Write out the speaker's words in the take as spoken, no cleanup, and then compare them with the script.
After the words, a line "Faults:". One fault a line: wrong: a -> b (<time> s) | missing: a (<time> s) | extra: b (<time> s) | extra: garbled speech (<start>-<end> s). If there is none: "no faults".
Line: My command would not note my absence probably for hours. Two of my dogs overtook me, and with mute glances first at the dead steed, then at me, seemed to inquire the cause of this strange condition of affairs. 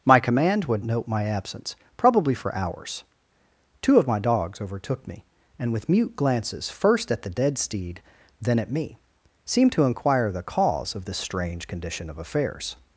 My command would note my absence probably for hours. Two of my dogs overtook me, and with mute glances first at the dead steed, then at me, seemed to inquire the cause of this strange condition of affairs.
Faults:
missing: not (0.8 s)